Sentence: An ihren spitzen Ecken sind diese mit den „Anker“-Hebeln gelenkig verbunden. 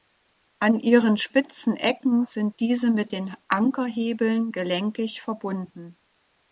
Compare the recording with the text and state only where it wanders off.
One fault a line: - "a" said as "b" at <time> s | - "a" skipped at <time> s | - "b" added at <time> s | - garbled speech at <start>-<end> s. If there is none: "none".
none